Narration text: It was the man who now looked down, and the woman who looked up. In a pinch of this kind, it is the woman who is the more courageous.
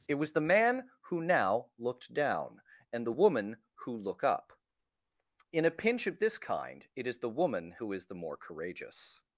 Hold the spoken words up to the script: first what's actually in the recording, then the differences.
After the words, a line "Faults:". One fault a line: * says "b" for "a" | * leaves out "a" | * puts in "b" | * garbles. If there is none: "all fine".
It was the man who now looked down, and the woman who look up. In a pinch of this kind, it is the woman who is the more courageous.
Faults:
* says "look" for "looked"